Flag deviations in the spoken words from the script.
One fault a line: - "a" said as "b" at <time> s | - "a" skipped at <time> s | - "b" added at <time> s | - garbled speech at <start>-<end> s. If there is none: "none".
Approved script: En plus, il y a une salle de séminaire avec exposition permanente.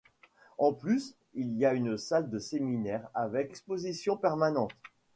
none